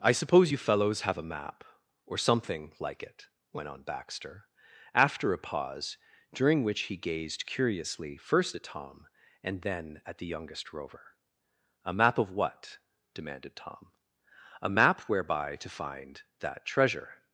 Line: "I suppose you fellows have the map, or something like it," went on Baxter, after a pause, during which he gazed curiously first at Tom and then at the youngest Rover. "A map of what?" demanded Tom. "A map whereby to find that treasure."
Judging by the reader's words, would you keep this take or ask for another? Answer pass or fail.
fail